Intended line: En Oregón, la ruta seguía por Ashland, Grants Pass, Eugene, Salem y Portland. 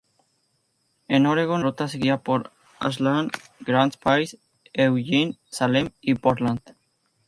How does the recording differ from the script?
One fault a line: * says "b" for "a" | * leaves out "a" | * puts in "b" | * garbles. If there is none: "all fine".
* leaves out "la"